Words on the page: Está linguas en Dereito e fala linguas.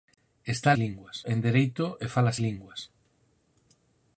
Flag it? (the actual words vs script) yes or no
no